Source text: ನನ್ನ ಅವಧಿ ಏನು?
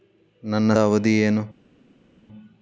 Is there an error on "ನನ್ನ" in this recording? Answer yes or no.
no